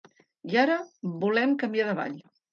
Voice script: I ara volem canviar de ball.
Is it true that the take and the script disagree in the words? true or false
false